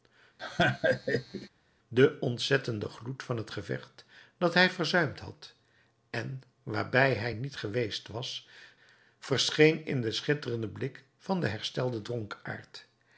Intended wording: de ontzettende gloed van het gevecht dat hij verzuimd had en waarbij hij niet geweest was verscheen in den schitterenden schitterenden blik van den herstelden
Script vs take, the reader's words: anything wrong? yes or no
yes